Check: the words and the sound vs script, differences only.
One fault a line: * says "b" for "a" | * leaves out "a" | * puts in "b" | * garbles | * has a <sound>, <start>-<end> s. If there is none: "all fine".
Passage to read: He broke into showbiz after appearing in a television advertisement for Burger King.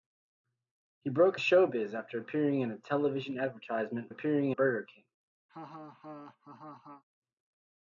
* leaves out "into"
* says "appearing" for "for"
* has a laugh, 5.5-7.0 s